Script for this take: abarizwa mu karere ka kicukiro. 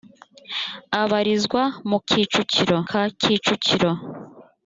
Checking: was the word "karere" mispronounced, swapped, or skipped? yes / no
yes